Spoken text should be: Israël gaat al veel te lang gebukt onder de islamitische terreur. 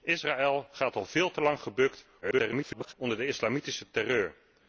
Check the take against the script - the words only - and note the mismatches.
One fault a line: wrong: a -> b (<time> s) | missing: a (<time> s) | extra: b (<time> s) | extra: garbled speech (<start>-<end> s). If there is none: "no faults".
extra: garbled speech (2.2-2.9 s)